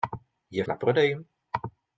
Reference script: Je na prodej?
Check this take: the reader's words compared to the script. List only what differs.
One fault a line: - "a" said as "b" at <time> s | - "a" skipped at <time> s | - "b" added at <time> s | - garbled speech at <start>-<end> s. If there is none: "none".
none